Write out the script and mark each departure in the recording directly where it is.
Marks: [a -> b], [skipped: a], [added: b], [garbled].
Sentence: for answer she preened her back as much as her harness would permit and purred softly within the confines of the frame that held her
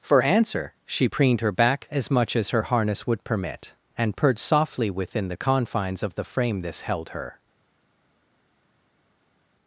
for answer she preened her back as much as her harness would permit and purred softly within the confines of the frame [that -> this] held her